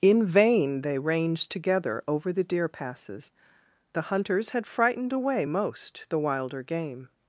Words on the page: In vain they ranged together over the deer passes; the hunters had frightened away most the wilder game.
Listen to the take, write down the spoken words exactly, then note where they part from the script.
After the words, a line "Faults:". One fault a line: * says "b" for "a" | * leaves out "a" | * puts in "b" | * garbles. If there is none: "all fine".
In vain they ranged together over the deer passes; the hunters had frightened away most the wilder game.
Faults:
all fine